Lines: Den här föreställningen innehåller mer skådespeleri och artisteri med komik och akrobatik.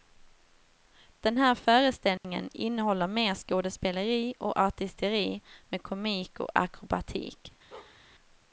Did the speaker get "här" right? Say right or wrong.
right